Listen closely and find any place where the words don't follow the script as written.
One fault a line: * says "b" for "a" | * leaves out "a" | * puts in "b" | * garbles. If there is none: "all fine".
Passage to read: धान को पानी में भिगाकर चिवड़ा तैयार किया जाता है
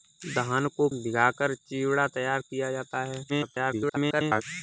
* leaves out "पानी में"
* garbles